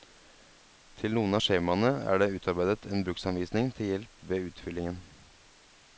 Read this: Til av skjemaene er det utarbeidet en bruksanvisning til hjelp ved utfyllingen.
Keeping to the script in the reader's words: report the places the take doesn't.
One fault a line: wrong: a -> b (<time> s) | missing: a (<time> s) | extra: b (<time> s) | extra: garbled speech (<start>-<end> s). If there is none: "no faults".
extra: noen (1.2 s)